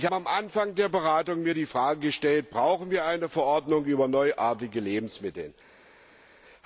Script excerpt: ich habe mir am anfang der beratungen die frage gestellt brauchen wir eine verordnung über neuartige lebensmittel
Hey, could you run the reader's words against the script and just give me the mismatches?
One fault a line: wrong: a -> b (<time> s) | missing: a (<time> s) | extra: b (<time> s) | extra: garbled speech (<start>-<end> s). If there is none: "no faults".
missing: habe (0.1 s)